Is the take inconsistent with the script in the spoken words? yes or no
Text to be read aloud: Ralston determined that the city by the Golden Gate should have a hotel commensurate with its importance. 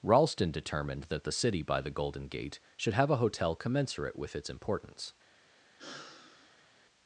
no